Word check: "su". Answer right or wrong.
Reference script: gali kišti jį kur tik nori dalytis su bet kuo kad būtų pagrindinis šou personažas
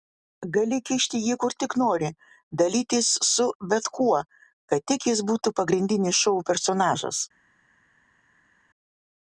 right